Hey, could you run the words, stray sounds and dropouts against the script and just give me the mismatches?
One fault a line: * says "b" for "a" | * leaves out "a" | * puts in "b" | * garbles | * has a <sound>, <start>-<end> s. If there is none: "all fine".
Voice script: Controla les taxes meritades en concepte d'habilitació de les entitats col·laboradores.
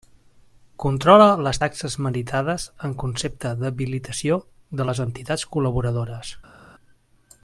all fine